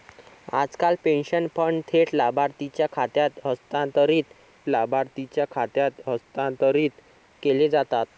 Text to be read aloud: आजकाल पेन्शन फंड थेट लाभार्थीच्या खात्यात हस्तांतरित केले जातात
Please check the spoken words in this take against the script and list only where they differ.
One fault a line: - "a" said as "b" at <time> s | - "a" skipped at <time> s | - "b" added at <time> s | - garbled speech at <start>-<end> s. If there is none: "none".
- "लाभार्थीच्या खात्यात हस्तांतरित" added at 4.7 s